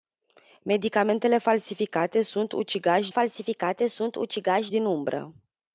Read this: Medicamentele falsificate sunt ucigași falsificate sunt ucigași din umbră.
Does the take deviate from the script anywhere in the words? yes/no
no